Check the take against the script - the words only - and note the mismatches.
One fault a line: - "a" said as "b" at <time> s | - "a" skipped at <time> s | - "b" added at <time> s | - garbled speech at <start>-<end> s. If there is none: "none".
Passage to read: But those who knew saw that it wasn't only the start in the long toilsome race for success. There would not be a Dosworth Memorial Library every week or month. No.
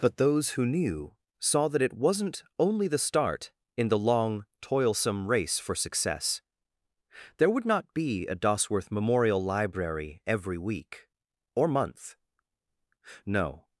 none